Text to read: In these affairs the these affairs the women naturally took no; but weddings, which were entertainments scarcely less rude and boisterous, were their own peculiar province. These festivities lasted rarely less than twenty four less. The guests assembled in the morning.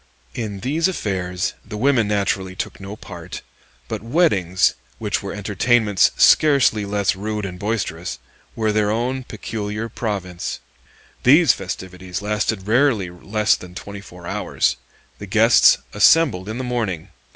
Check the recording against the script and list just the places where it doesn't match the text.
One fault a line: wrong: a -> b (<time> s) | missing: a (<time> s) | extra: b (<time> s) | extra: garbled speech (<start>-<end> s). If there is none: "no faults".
missing: these affairs the (1.8 s)
extra: part (3.0 s)
wrong: less -> hours (14.3 s)